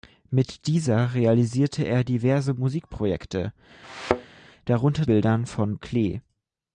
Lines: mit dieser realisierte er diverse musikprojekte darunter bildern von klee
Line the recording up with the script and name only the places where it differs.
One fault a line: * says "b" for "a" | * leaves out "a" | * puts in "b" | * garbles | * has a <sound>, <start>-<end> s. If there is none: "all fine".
* has a thud, 3.8-4.4 s